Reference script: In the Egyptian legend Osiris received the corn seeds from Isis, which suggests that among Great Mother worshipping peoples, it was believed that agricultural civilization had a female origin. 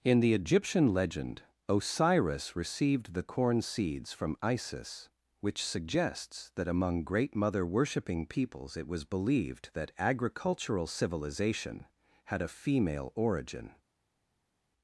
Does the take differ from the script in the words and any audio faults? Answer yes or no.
no